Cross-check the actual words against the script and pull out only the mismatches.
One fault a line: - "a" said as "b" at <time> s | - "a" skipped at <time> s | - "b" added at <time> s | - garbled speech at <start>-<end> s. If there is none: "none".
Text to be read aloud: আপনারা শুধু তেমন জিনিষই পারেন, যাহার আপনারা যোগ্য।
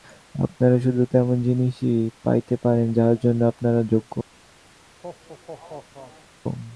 - "পাইতে" added at 2.2 s
- "জন্য" added at 3.2 s